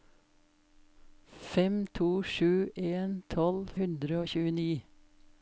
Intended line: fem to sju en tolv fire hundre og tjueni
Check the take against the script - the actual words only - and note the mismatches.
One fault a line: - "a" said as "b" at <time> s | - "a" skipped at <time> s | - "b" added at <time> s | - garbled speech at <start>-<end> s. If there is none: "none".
- "fire" skipped at 3.7 s